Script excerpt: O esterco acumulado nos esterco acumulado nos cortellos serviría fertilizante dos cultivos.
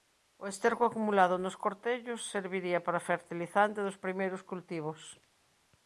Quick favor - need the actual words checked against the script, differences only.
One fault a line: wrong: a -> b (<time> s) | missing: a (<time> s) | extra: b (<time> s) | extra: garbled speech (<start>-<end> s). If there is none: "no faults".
missing: esterco acumulado nos (1.6 s)
extra: para (2.9 s)
extra: primeiros (4.0 s)